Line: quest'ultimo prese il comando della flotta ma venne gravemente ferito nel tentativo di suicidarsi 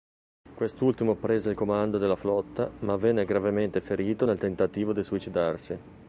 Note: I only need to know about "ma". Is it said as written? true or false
true